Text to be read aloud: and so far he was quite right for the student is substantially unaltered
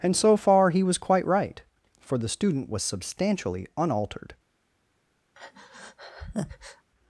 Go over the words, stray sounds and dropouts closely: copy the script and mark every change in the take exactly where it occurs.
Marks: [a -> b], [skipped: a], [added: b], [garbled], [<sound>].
and so far he was quite right for the student [is -> was] substantially unaltered [breath]